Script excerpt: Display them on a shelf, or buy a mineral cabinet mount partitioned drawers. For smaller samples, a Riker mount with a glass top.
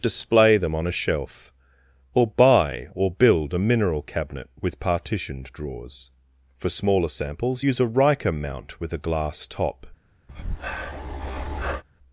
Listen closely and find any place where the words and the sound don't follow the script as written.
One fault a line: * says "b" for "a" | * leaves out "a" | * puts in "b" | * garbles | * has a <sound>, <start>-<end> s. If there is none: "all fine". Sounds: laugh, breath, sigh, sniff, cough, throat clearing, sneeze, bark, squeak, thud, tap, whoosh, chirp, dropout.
* puts in "or build"
* says "with" for "mount"
* puts in "use"
* has a breath, 10.3-11.8 s